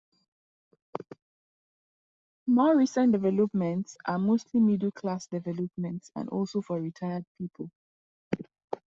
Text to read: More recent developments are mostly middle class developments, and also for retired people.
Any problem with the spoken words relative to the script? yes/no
no